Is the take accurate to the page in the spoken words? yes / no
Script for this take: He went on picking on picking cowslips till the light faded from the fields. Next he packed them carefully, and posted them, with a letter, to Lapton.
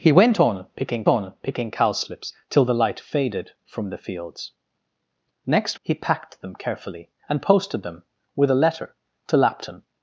yes